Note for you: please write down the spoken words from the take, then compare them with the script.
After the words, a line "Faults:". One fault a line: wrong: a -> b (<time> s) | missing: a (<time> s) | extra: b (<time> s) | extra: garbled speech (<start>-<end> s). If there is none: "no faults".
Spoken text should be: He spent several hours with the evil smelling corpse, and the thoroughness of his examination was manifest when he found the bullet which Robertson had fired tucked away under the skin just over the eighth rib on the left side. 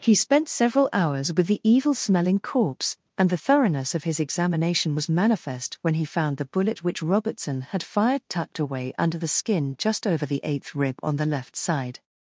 He spent several hours with the evil smelling corpse, and the thoroughness of his examination was manifest when he found the bullet which Robertson had fired tucked away under the skin just over the eighth rib on the left side.
Faults:
no faults